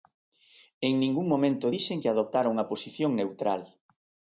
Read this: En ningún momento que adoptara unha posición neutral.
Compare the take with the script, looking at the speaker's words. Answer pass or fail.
fail